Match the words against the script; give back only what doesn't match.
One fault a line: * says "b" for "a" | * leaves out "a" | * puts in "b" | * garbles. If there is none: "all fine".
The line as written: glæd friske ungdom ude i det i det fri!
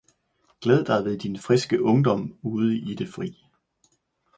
* puts in "dig ved din"
* leaves out "i det"